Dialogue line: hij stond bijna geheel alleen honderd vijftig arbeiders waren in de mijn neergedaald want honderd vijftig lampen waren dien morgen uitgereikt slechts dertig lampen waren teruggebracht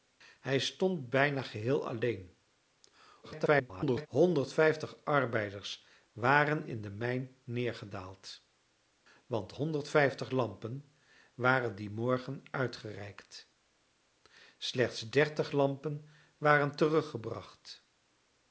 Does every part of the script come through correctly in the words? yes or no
no